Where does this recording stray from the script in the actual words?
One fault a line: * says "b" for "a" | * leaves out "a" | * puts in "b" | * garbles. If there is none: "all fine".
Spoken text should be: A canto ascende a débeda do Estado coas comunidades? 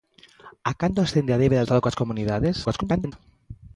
* leaves out "do"
* garbles